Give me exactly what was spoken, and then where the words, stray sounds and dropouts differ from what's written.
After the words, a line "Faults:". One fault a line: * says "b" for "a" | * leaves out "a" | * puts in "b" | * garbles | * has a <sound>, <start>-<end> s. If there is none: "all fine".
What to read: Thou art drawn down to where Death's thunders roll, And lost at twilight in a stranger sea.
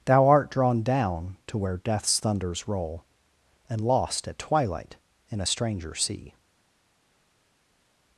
Thou art drawn down to where Death's thunders roll, And lost at twilight in a stranger sea.
Faults:
all fine